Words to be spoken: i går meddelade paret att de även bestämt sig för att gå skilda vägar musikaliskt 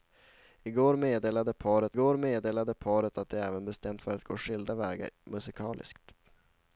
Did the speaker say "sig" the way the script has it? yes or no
no